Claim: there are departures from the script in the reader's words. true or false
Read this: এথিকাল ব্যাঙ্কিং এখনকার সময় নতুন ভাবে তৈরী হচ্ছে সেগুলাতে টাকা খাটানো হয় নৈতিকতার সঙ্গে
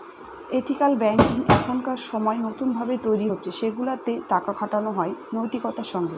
false